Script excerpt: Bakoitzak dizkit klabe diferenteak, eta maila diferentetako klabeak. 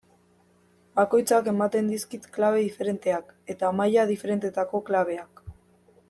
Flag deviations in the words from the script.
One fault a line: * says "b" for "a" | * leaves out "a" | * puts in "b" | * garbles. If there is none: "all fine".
* puts in "ematen"